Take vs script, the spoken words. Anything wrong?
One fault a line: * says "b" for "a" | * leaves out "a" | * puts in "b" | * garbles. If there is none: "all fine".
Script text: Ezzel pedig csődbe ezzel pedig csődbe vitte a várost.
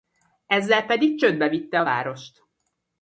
* leaves out "ezzel pedig csődbe"